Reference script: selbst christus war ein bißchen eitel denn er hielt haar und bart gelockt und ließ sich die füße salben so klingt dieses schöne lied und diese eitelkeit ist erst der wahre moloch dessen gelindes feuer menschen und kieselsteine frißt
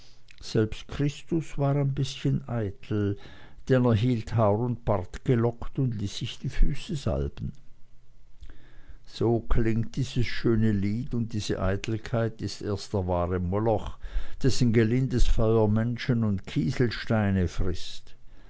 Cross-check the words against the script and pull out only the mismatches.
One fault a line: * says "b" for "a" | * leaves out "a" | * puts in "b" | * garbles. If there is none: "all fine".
all fine